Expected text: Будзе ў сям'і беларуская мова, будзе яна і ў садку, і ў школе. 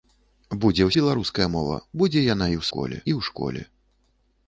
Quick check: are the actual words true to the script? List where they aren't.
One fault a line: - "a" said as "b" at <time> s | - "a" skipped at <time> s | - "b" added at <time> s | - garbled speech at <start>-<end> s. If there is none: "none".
- "сям'і" skipped at 0.9 s
- "садку" said as "школе" at 2.7 s